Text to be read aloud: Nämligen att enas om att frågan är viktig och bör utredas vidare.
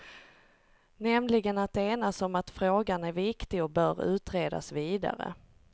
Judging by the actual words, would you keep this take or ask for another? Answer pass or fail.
pass